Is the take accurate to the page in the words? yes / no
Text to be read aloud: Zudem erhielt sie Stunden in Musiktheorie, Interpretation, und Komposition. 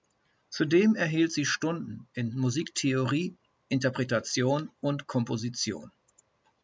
yes